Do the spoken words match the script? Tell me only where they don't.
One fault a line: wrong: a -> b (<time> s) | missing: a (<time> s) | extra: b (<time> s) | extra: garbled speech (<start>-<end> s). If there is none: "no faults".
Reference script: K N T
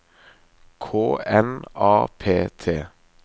extra: A P (1.8 s)